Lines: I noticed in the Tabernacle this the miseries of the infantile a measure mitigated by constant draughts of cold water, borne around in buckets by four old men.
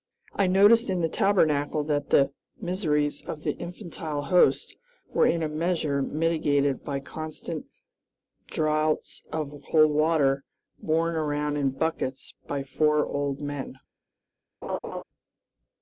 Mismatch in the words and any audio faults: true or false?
true